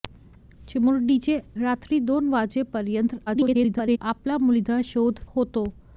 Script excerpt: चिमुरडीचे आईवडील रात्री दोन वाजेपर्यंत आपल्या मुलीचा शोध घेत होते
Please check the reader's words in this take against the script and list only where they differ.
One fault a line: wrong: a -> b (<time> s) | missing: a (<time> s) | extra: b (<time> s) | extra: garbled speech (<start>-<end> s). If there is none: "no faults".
missing: आईवडील (1.4 s)
extra: garbled speech (3.3-4.0 s)
missing: घेत (5.2 s)